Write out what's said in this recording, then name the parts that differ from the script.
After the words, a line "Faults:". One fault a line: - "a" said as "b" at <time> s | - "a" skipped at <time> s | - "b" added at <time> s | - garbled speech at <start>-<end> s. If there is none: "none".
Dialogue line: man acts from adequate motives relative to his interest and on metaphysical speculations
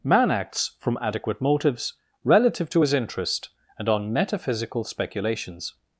man acts from adequate motives relative to his interest and on metaphysical speculations
Faults:
none